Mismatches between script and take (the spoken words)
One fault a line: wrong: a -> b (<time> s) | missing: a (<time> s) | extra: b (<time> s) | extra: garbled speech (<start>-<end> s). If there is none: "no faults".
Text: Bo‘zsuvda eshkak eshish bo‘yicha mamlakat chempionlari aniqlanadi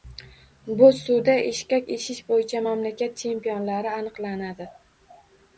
no faults